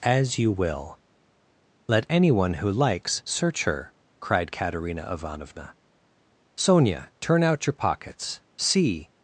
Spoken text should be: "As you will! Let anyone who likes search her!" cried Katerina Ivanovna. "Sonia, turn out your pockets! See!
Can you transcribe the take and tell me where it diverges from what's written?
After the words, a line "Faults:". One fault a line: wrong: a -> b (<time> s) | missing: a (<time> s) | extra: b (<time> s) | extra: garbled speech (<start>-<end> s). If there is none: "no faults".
"As you will! Let anyone who likes search her!" cried Katerina Ivanovna. "Sonia, turn out your pockets! See!
Faults:
no faults